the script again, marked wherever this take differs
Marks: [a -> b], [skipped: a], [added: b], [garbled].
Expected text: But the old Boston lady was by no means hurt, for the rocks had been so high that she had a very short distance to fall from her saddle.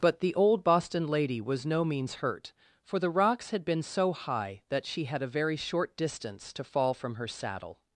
But the old Boston lady was [skipped: by] no means hurt, for the rocks had been so high that she had a very short distance to fall from her saddle.